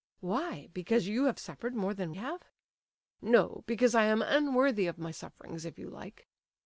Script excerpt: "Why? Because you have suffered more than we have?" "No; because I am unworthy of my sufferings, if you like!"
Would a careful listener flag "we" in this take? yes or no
yes